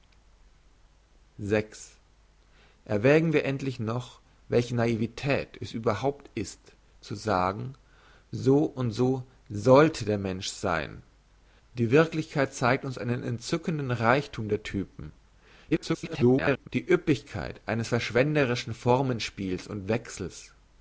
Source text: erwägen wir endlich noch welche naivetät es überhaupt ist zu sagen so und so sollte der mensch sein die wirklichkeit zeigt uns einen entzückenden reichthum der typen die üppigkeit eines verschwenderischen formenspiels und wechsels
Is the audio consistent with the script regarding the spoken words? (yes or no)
no